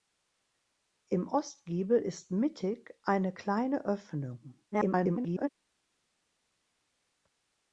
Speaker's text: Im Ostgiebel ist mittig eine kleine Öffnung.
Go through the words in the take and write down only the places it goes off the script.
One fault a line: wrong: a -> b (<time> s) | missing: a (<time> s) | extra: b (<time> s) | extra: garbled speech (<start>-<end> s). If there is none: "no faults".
extra: garbled speech (4.7-5.5 s)